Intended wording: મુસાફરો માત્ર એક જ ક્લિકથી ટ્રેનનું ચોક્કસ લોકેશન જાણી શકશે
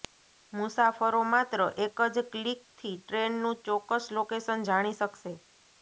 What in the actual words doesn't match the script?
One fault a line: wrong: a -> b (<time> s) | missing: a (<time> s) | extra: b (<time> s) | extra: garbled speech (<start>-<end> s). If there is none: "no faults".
no faults